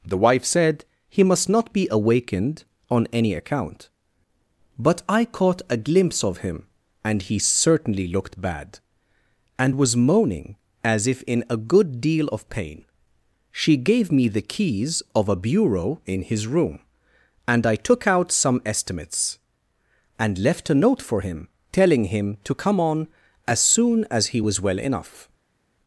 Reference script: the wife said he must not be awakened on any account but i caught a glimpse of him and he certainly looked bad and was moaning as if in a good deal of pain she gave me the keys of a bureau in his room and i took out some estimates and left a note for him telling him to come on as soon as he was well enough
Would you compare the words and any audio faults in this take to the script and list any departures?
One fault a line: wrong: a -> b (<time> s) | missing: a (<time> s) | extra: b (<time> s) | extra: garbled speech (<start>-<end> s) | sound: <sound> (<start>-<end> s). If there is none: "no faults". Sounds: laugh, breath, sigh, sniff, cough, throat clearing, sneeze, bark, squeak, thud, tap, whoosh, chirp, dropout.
no faults